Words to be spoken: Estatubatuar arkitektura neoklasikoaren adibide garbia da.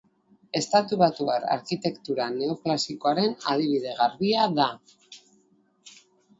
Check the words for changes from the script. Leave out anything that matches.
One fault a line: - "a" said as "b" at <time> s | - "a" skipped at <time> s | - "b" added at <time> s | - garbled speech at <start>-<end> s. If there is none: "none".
none